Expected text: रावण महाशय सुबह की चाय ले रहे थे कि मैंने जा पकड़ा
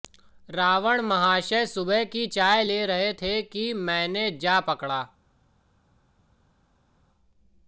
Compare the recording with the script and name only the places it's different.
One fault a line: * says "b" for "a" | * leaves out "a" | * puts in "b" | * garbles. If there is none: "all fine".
all fine